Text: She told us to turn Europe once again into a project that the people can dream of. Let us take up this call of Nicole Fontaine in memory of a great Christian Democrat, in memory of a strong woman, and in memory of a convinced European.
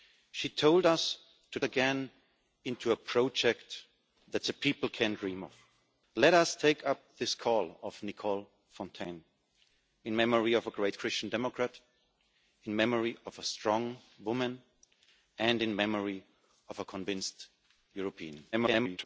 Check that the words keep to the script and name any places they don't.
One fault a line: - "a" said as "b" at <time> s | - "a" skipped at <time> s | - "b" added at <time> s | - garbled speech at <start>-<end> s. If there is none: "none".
- "turn Europe once" skipped at 1.6 s
- garbled speech at 18.5-19.0 s